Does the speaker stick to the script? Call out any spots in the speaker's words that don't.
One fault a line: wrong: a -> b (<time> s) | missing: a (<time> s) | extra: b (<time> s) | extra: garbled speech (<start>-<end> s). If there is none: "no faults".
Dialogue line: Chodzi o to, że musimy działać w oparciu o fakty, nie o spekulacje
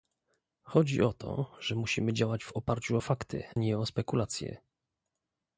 no faults